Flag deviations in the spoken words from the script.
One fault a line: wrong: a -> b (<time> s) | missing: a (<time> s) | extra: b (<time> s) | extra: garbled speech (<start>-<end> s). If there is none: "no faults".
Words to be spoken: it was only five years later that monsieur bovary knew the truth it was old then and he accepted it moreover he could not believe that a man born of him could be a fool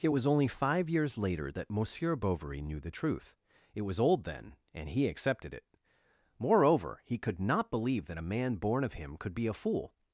no faults